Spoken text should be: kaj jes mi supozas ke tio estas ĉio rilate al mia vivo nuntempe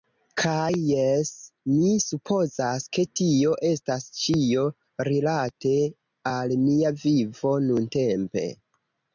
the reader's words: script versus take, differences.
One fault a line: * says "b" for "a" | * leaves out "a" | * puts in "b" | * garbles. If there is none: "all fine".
all fine